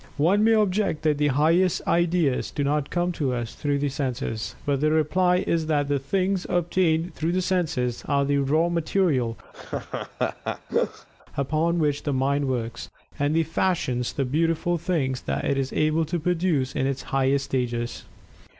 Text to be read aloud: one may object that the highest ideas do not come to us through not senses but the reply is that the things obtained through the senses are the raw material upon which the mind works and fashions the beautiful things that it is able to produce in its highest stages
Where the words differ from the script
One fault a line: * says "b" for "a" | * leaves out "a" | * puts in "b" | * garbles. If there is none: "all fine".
* says "the" for "not"